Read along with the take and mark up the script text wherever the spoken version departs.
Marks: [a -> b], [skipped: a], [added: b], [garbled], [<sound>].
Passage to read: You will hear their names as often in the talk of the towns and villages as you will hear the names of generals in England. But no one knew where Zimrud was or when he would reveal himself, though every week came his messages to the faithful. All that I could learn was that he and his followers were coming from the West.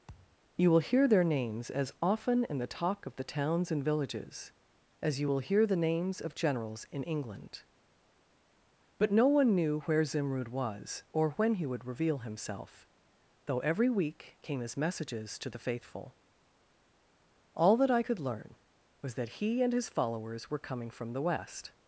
[thud] You will hear their names as often in the talk of the towns and villages as you will hear the names of generals in England. But no one knew where Zimrud was or when he would reveal himself, though every week came his messages to the faithful. All that I could learn was that he and his followers were coming from the West.